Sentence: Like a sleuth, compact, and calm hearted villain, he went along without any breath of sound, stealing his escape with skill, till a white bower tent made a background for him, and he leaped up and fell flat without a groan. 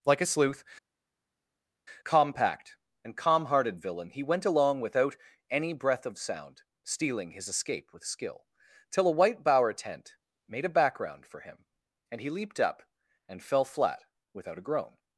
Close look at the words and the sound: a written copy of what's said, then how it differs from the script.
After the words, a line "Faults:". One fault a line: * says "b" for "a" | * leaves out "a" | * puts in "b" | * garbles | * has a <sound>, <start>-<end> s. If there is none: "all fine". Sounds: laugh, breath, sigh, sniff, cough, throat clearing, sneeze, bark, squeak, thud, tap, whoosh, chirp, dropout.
Like a sleuth, compact, and calm hearted villain, he went along without any breath of sound, stealing his escape with skill, till a white bower tent made a background for him, and he leaped up and fell flat without a groan.
Faults:
all fine